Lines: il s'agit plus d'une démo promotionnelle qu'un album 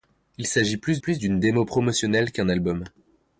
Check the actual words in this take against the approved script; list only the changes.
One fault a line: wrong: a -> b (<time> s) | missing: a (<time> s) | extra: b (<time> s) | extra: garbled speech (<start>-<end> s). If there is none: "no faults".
extra: plus (1.0 s)